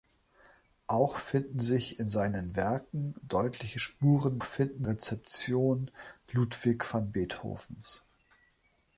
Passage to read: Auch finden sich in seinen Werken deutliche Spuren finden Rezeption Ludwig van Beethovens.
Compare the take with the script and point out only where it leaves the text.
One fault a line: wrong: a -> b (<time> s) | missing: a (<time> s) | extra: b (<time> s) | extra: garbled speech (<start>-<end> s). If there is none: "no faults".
no faults